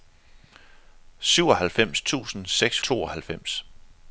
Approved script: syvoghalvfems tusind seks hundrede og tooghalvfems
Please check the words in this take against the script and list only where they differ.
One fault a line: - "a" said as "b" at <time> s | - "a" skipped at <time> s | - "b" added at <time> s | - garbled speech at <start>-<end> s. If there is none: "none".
- "hundrede og" skipped at 2.8 s